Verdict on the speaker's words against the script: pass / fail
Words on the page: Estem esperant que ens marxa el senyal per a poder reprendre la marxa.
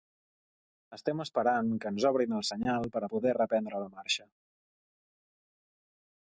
fail